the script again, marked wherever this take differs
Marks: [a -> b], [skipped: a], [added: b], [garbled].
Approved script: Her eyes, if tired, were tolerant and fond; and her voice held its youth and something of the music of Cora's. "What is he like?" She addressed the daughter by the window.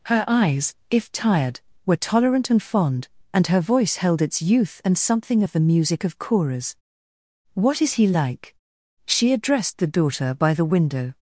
Her eyes, if tired, were tolerant and fond; and her voice held its youth and something of the music of Cora's. "What is he like?" She addressed the daughter by the window.